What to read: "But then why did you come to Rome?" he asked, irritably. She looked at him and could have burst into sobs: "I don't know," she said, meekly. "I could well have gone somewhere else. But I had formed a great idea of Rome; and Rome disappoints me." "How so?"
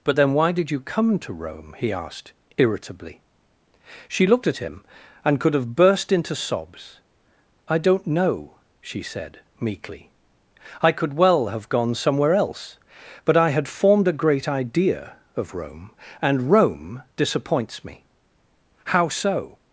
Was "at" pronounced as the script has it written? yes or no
yes